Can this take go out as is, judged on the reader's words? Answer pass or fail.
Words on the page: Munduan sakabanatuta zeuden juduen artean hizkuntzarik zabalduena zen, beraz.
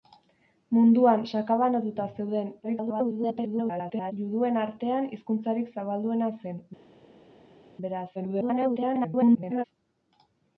fail